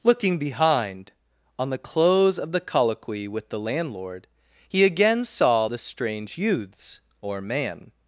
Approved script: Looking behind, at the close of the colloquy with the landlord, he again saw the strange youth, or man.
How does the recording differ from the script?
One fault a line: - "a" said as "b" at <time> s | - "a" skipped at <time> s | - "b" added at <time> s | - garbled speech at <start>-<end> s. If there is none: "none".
- "at" said as "on" at 1.6 s
- "youth" said as "youths" at 6.4 s